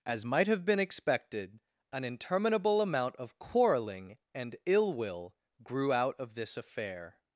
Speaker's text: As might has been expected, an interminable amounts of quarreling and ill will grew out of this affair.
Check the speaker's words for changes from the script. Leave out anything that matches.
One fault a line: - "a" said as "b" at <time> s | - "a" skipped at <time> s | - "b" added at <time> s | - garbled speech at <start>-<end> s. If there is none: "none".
- "has" said as "have" at 0.5 s
- "amounts" said as "amount" at 2.8 s